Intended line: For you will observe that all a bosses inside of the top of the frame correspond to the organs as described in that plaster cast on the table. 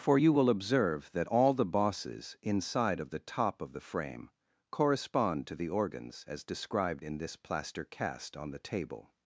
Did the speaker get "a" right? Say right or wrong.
wrong